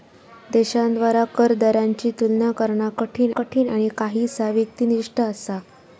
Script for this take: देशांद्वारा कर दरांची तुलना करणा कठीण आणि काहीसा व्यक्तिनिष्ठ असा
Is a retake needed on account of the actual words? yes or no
yes